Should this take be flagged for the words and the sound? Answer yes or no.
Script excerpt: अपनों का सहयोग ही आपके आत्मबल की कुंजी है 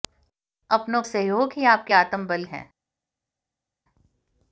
yes